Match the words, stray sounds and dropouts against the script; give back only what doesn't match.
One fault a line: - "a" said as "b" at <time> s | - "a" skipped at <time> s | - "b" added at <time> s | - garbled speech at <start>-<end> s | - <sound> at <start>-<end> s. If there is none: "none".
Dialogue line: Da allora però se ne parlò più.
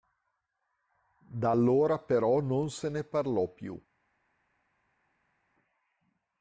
- "non" added at 2.4 s